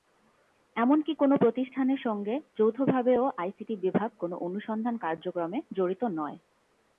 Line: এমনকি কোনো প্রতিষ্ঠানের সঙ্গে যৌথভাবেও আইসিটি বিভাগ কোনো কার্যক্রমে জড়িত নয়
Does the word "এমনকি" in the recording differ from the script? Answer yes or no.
no